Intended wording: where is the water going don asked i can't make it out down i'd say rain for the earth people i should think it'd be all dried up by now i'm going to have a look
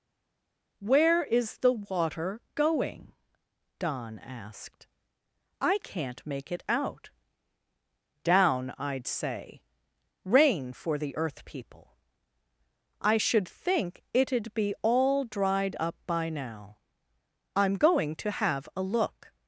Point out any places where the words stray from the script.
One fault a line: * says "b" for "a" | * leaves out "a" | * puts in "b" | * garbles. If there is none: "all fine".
all fine